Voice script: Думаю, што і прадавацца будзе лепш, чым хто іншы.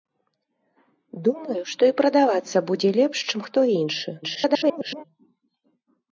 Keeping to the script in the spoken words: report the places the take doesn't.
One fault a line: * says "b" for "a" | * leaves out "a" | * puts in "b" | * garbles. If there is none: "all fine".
* garbles